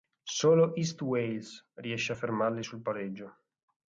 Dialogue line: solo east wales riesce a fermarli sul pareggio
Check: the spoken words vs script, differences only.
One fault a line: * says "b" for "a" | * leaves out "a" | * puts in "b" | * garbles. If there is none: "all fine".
all fine